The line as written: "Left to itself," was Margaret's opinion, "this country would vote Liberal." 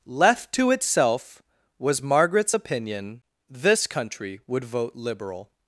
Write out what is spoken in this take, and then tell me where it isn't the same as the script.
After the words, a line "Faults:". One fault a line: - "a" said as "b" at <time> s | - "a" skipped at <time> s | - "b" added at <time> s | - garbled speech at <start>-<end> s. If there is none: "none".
"Left to itself," was Margaret's opinion, "this country would vote Liberal."
Faults:
none